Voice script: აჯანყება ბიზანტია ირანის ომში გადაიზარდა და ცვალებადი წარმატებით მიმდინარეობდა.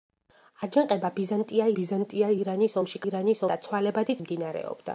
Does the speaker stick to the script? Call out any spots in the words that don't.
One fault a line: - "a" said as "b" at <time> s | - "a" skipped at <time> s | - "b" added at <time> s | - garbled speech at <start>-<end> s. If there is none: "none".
- "ბიზანტია" added at 1.8 s
- "გადაიზარდა" said as "ირანის" at 3.0 s
- "წარმატებით" skipped at 4.2 s